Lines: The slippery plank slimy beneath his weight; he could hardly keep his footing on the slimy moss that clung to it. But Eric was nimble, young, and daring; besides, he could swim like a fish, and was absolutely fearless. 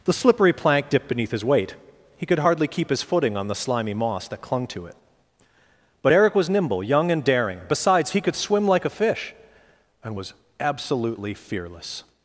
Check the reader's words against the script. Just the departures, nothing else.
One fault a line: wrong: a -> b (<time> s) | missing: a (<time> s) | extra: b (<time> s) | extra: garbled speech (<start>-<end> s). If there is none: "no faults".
wrong: slimy -> dipped (0.9 s)